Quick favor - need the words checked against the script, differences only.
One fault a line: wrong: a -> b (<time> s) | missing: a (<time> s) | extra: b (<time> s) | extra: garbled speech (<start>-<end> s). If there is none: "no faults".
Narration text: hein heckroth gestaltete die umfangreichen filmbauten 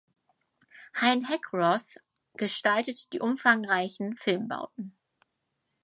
no faults